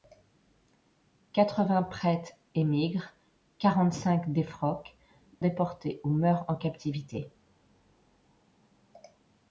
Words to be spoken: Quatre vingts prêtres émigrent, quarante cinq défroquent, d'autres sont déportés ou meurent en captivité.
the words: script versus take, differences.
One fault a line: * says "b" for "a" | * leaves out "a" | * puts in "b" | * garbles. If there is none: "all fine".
* leaves out "d'autres sont"